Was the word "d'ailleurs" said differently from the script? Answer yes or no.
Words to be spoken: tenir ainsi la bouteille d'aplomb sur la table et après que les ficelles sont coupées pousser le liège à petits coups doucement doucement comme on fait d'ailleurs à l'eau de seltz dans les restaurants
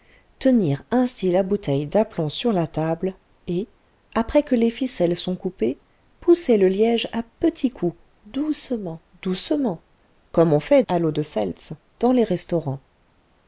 yes